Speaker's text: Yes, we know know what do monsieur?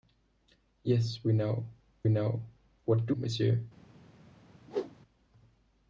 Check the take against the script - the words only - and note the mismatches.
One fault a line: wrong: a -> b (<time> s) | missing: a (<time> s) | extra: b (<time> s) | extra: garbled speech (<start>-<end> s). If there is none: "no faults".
no faults